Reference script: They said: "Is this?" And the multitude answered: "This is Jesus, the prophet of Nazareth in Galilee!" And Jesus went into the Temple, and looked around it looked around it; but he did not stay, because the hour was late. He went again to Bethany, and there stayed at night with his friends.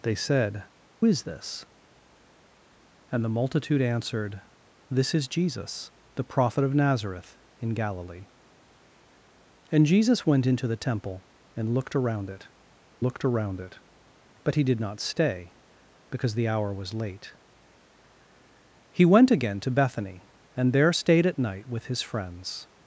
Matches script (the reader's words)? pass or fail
pass